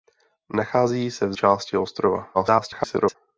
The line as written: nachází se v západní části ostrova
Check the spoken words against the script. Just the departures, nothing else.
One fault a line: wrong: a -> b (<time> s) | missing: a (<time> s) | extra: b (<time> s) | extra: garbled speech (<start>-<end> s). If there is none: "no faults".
missing: západní (1.3 s)
extra: garbled speech (2.3-3.1 s)